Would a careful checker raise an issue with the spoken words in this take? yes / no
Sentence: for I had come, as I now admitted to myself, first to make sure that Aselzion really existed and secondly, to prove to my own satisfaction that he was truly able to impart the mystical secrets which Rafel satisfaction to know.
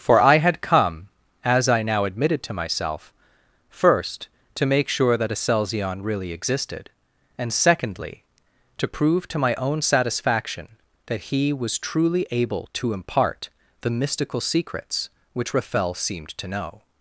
yes